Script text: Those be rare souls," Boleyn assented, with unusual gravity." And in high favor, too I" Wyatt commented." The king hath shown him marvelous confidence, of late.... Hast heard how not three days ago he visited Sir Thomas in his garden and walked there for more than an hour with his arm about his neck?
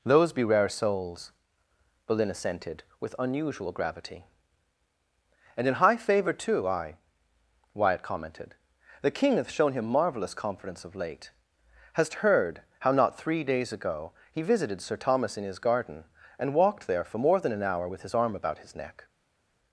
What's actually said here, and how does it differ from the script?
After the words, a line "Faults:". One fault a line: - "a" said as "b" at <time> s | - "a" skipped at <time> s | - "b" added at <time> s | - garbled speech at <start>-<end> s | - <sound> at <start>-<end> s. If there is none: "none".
Those be rare souls," Boleyn assented, with unusual gravity." And in high favor, too I" Wyatt commented." The king hath shown him marvelous confidence, of late.... Hast heard how not three days ago he visited Sir Thomas in his garden and walked there for more than an hour with his arm about his neck?
Faults:
none